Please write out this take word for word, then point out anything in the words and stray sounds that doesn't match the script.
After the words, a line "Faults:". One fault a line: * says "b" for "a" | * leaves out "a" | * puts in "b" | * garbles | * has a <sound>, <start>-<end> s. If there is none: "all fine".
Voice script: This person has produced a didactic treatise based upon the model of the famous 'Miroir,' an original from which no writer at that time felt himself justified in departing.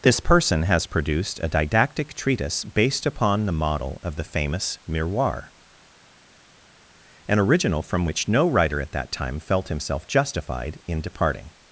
This person has produced a didactic treatise based upon the model of the famous 'Miroir,' an original from which no writer at that time felt himself justified in departing.
Faults:
all fine